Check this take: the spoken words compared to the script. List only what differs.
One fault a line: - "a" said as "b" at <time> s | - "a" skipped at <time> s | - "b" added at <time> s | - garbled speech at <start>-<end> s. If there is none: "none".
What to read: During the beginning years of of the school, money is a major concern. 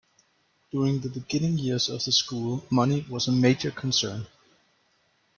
- "of" skipped at 2.0 s
- "is" said as "was" at 3.1 s